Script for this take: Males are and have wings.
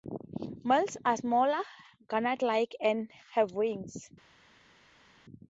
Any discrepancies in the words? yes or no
yes